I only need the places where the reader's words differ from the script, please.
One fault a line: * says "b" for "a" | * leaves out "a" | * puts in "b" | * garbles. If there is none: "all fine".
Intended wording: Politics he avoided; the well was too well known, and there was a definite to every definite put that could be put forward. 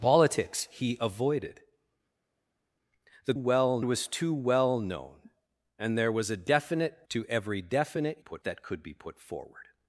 all fine